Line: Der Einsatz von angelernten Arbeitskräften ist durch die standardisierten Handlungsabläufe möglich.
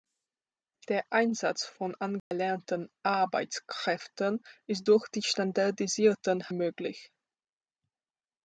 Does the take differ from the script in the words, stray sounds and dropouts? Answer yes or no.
yes